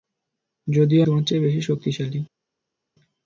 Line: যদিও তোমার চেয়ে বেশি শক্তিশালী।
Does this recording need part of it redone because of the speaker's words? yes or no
no